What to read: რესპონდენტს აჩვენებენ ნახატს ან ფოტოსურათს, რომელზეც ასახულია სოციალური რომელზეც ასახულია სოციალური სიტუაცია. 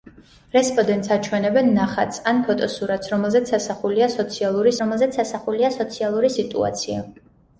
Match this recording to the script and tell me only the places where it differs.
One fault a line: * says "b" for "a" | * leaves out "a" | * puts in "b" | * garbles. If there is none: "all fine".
all fine